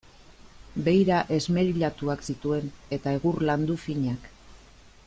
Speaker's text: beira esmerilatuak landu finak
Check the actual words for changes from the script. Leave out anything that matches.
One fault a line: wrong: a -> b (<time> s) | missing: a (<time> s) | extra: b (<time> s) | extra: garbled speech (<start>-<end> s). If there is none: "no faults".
extra: zituen eta egur (2.3 s)